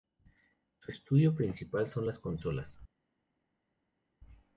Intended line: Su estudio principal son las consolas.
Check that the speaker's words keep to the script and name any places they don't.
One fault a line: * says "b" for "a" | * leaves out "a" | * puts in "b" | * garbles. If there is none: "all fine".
all fine